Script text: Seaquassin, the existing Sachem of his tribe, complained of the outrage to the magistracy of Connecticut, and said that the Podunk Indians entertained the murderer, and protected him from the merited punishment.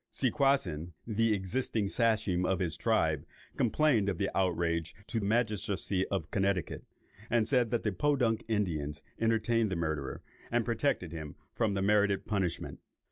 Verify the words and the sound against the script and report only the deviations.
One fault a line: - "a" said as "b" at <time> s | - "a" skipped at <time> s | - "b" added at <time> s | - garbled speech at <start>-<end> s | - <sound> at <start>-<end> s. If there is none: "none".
- "the" skipped at 5.2 s